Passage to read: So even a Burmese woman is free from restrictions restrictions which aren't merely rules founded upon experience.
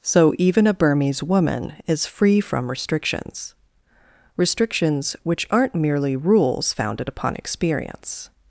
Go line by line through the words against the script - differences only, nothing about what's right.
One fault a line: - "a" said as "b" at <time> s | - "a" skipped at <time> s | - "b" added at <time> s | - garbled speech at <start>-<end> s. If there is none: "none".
none